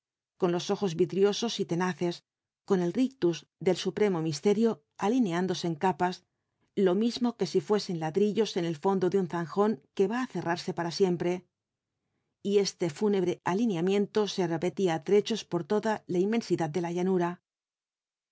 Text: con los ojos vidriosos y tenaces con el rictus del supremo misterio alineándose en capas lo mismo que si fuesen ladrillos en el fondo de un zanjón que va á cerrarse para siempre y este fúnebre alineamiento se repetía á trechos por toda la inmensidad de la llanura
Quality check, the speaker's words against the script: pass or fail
pass